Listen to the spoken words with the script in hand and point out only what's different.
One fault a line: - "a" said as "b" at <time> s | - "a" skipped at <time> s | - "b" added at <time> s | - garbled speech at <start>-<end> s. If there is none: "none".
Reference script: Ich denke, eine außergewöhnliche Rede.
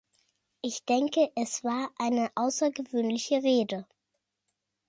- "es war" added at 1.4 s